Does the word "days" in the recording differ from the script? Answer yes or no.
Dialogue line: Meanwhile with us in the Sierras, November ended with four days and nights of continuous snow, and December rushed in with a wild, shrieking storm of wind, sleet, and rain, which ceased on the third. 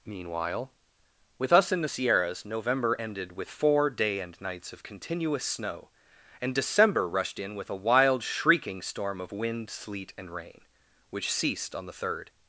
yes